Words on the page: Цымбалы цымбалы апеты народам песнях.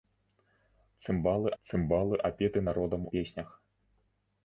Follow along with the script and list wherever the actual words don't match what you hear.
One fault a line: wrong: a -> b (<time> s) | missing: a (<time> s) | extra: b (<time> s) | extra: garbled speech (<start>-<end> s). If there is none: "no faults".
no faults